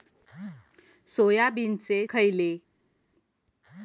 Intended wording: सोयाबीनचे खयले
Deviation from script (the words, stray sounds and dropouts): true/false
false